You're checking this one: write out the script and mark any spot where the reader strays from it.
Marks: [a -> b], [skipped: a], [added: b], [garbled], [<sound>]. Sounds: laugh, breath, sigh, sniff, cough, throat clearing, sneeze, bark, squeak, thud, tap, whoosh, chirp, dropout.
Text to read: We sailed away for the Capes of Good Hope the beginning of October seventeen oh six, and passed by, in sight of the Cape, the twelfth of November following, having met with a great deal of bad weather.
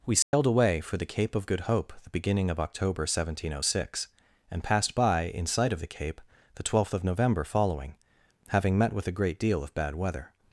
We sailed [dropout] away for the [Capes -> Cape] of Good Hope the beginning of October seventeen oh six, and passed by, in sight of the Cape, the twelfth of November following, having met with a great deal of bad weather.